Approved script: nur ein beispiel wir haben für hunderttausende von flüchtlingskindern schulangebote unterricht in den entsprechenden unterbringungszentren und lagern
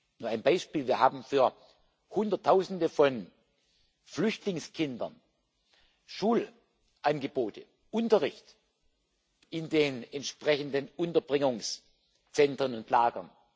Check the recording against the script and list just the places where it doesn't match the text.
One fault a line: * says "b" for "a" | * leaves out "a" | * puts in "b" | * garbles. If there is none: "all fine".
all fine